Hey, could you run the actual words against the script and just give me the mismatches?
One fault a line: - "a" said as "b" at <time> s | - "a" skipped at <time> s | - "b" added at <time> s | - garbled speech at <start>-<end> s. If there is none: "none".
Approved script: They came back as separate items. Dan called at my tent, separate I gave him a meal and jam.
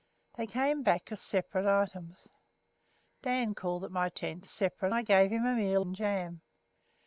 none